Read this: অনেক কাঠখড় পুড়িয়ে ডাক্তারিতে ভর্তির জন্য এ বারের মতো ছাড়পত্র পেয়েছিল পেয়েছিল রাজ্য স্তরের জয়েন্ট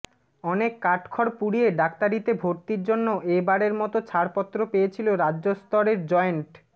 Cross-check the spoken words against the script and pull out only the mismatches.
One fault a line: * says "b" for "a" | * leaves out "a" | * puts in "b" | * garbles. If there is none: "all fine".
* leaves out "পেয়েছিল"